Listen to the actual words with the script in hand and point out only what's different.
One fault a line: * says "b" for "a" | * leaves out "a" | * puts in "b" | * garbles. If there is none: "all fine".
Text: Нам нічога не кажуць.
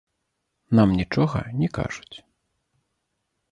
all fine